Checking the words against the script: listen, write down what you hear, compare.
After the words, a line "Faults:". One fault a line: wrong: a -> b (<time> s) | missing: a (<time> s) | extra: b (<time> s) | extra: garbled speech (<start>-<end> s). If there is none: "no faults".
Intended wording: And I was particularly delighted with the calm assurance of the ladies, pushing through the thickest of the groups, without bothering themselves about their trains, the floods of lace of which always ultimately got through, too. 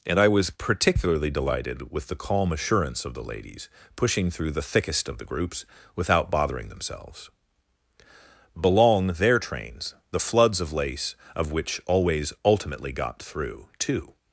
And I was particularly delighted with the calm assurance of the ladies, pushing through the thickest of the groups, without bothering themselves belong their trains, the floods of lace of which always ultimately got through, too.
Faults:
wrong: about -> belong (8.6 s)